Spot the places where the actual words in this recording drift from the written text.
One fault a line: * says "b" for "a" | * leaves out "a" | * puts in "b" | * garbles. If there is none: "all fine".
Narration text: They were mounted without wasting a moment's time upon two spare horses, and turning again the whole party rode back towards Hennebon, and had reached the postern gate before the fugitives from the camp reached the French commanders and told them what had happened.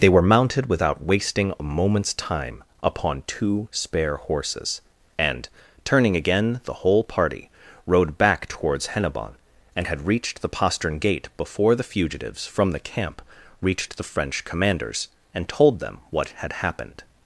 all fine